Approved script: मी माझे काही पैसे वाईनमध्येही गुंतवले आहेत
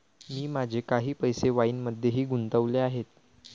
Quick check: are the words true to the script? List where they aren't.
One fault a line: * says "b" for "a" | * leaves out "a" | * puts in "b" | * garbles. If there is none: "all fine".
all fine